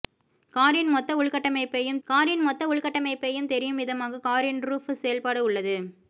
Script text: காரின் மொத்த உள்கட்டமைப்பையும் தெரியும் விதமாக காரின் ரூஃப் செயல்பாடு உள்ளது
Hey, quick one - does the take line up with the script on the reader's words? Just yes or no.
no